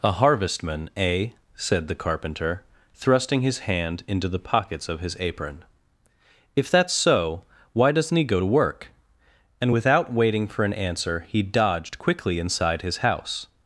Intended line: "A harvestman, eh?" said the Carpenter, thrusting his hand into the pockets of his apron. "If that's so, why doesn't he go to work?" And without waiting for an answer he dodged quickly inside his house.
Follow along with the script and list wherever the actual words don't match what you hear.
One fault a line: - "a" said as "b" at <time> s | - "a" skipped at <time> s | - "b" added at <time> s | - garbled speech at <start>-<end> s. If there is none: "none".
none